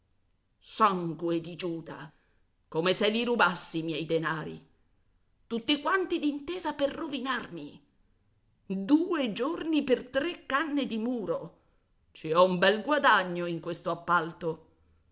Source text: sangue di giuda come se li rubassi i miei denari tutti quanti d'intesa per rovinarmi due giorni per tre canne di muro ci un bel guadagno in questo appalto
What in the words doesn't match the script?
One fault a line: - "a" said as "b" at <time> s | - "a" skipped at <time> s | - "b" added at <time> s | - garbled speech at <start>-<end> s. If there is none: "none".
- "ho" added at 12.3 s